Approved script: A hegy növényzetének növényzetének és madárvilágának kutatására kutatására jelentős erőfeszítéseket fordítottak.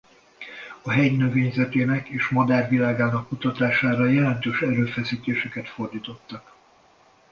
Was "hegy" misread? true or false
false